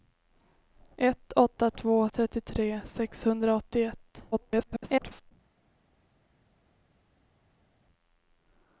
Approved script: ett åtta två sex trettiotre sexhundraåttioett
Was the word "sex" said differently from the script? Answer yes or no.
yes